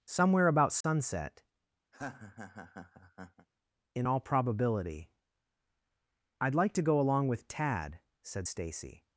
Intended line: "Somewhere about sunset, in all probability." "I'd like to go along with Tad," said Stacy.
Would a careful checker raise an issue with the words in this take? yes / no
no